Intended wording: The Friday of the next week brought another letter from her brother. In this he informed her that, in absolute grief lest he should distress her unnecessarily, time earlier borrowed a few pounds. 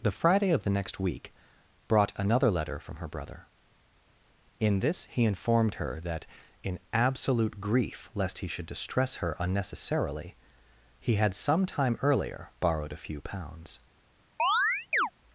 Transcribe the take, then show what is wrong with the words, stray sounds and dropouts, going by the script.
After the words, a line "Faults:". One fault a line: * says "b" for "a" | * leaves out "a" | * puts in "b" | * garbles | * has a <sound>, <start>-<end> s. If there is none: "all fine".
The Friday of the next week brought another letter from her brother. In this he informed her that, in absolute grief lest he should distress her unnecessarily, he had some time earlier borrowed a few pounds.
Faults:
* puts in "he had some"
* has a chirp, 14.4-15.1 s